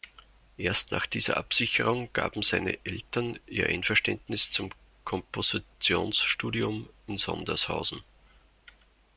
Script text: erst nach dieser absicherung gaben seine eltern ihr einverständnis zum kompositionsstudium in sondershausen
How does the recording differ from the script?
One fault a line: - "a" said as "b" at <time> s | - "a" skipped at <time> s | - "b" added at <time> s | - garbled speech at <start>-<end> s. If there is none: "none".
none